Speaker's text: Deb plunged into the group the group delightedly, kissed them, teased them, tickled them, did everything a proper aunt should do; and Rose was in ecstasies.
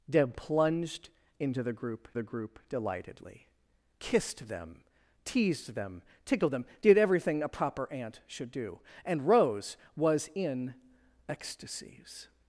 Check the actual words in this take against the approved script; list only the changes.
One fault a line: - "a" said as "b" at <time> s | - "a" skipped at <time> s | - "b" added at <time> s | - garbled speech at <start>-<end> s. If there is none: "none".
none